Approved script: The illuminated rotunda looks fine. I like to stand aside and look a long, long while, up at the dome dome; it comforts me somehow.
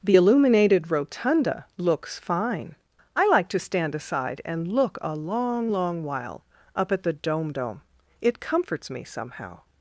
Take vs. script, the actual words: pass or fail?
pass